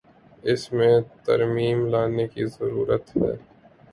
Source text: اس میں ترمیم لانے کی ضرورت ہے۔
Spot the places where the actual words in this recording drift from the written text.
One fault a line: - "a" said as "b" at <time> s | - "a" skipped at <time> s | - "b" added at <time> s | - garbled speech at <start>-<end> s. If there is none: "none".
none